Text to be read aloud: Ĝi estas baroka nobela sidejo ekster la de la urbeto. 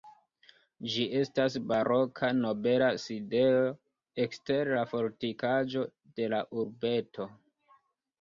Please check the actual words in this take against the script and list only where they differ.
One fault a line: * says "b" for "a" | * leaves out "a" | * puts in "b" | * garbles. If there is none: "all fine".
* puts in "fortikaĵo"